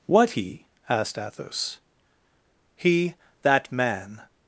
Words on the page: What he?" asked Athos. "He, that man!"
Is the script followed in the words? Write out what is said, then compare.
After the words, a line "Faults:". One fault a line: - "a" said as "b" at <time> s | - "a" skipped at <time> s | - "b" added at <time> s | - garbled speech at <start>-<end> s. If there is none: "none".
What he?" asked Athos. "He, that man!"
Faults:
none